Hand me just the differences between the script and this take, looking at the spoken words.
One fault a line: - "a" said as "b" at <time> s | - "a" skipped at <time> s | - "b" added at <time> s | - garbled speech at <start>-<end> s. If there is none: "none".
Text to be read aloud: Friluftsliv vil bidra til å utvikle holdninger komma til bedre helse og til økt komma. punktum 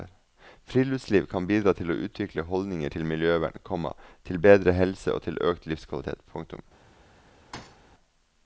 - "vil" said as "kan" at 1.3 s
- "til miljøvern" added at 2.9 s
- "komma" said as "livskvalitet" at 5.7 s